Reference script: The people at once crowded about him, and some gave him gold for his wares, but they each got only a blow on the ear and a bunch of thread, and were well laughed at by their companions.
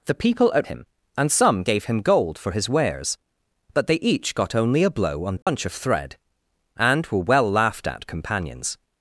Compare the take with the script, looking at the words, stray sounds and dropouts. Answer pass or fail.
fail